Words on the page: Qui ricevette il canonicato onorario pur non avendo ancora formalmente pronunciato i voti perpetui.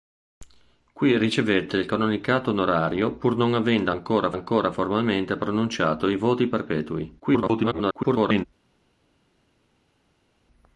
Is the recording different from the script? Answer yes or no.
yes